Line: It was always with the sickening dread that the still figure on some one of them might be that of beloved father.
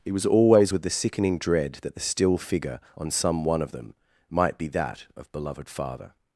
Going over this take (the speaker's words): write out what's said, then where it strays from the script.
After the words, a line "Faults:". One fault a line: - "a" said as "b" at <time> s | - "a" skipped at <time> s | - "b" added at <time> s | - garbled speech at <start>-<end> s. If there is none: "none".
It was always with the sickening dread that the still figure on some one of them might be that of beloved father.
Faults:
none